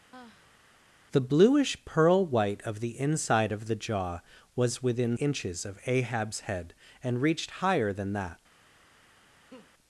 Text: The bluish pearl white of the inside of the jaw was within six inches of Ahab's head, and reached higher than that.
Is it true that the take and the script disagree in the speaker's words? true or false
true